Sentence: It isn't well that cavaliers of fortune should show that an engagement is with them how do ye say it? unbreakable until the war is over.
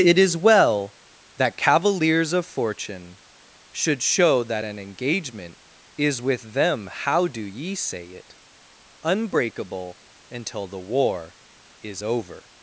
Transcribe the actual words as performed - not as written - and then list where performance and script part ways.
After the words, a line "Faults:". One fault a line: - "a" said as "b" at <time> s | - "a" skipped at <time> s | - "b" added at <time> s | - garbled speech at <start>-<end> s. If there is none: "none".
It is well that cavaliers of fortune should show that an engagement is with them how do ye say it? unbreakable until the war is over.
Faults:
- "isn't" said as "is" at 0.2 s